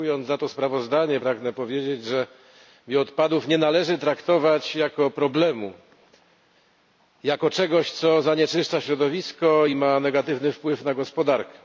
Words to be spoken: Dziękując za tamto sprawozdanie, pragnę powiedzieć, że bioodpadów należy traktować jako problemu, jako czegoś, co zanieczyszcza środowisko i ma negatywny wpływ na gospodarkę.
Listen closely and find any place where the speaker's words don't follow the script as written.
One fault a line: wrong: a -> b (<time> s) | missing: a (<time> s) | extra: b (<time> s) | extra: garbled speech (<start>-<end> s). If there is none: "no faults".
wrong: tamto -> to (0.4 s)
extra: nie (3.5 s)